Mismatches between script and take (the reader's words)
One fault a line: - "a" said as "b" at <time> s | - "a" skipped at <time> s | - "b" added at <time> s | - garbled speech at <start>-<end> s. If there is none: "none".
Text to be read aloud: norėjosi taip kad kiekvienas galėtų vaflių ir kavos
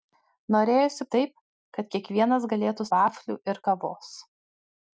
none